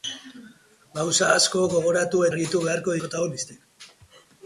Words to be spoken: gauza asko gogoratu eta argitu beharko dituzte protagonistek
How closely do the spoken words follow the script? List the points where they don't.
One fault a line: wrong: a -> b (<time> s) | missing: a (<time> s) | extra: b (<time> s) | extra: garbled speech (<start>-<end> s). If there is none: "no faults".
missing: eta (2.2 s)
missing: dituzte (3.0 s)